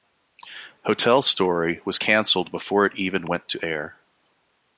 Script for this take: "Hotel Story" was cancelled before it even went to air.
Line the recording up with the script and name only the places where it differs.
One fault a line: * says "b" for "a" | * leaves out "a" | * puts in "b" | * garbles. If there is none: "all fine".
all fine